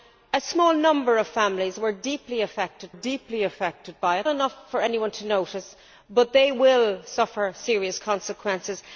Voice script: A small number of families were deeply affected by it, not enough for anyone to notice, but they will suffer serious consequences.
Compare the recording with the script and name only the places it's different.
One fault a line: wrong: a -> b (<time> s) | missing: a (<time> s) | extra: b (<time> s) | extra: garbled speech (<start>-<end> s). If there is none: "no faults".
extra: deeply affected (2.9 s)
missing: not (4.3 s)